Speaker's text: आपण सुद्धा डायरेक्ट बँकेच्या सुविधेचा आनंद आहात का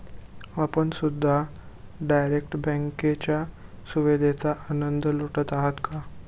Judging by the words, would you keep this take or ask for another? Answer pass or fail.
fail